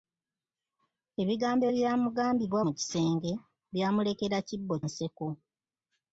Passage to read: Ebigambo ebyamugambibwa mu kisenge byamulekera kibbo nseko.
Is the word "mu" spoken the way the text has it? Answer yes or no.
yes